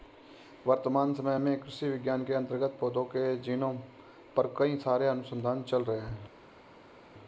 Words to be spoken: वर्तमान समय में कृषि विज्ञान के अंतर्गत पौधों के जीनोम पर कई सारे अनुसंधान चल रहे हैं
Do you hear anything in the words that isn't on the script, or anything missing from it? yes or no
no